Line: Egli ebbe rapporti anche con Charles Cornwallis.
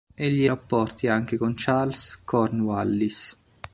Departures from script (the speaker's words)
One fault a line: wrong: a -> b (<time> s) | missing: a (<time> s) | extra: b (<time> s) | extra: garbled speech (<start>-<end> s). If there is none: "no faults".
missing: ebbe (0.5 s)